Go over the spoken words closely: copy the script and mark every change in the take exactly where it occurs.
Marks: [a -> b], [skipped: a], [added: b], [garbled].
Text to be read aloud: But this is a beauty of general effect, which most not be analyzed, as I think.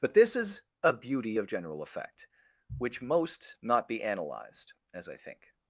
But this is a beauty of general effect, which most not be analyzed, as I think.